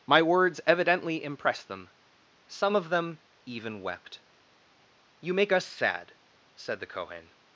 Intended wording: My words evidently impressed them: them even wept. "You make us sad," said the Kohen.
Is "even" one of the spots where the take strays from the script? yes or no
no